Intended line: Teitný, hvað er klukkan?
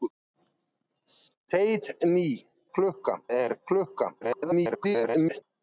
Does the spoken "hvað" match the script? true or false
false